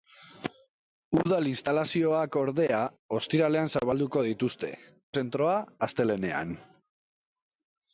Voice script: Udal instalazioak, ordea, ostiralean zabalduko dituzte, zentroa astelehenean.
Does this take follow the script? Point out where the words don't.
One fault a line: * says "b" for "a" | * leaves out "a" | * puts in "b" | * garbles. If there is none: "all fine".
all fine